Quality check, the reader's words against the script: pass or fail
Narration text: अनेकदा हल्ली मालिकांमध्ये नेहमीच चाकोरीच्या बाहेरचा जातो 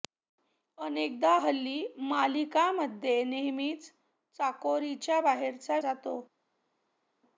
pass